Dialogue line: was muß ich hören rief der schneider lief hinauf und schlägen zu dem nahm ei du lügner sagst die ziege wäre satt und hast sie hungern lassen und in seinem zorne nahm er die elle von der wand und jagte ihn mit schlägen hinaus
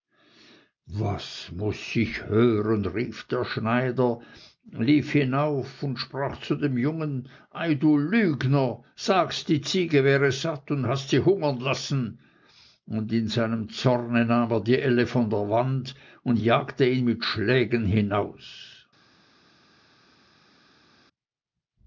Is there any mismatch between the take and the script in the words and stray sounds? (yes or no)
yes